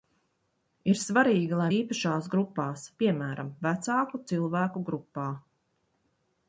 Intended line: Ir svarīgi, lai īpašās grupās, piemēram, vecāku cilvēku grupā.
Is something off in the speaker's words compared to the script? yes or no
no